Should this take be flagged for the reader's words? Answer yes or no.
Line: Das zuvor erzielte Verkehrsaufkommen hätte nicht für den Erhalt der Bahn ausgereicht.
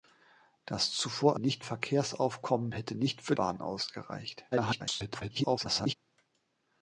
yes